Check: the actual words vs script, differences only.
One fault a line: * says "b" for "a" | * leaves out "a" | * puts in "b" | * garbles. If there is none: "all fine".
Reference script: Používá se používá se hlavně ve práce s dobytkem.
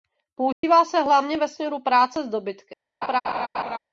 * leaves out "používá se"
* puts in "směru"